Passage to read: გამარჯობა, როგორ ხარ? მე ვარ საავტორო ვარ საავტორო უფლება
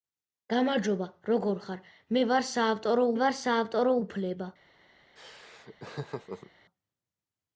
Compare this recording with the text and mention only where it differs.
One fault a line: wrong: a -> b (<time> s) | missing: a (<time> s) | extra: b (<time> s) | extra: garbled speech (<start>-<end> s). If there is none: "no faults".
no faults